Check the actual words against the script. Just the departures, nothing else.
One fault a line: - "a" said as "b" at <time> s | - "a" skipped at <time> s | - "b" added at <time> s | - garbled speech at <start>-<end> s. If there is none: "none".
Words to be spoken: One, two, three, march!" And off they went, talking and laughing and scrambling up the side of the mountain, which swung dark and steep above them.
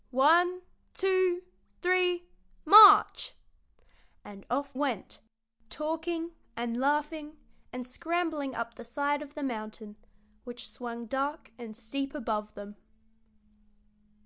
- "they" skipped at 4.8 s